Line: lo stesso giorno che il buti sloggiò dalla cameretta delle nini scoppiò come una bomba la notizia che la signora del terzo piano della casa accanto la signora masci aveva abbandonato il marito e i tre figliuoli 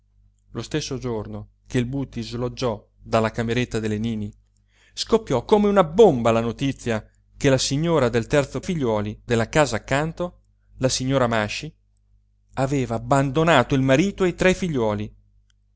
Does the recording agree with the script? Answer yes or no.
no